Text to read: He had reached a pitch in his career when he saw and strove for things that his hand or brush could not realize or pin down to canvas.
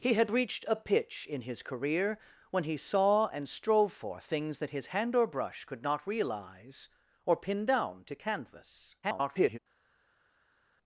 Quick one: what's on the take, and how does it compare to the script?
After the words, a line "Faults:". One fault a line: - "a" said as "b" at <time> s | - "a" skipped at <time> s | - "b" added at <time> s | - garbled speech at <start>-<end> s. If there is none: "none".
He had reached a pitch in his career when he saw and strove for things that his hand or brush could not realize or pin down to canvas. [garbled]
Faults:
- garbled speech at 9.0-9.6 s